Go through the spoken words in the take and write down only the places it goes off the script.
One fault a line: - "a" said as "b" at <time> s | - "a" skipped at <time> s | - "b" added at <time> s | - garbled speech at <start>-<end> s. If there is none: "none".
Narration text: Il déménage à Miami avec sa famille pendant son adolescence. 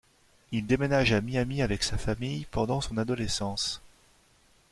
none